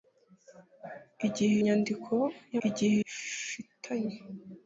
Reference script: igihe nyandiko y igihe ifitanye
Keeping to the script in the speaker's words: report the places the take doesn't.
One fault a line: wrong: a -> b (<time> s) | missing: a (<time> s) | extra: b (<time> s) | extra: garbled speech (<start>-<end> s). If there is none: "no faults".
no faults